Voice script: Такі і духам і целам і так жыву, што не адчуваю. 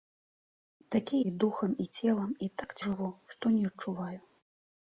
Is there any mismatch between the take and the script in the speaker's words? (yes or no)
no